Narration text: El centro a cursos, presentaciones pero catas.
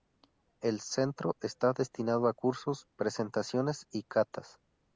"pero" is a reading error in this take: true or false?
true